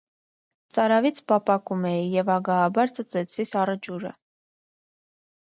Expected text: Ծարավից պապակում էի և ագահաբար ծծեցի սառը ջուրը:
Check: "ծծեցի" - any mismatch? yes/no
no